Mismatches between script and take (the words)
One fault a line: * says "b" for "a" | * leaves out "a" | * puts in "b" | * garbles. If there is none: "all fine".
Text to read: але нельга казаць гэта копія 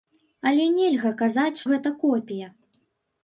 all fine